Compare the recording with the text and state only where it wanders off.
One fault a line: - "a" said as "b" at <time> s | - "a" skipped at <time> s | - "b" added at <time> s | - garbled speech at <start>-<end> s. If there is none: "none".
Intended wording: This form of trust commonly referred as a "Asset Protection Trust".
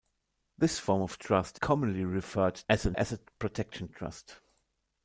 none